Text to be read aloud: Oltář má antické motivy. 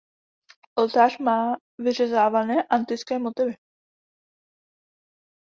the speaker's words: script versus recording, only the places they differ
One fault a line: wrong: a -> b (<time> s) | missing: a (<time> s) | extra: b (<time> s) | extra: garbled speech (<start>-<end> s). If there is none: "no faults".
extra: vyřezávané (1.8 s)